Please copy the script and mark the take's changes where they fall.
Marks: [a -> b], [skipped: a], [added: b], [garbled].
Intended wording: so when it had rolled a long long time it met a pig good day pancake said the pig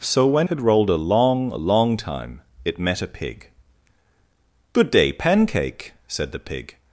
so when [skipped: it] had rolled a long long time it met a pig good day pancake said the pig